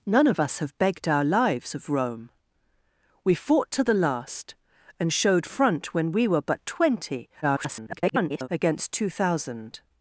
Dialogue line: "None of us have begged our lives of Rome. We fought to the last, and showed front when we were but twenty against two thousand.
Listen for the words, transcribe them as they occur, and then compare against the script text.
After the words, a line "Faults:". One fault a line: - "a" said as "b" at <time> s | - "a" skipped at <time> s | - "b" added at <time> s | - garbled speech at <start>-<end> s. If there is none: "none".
"None of us have begged our lives of Rome. We fought to the last, and showed front when we were but twenty [garbled] against two thousand.
Faults:
- garbled speech at 7.4-8.5 s